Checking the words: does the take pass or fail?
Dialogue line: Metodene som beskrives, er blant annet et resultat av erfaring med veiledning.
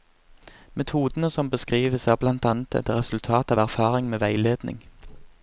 pass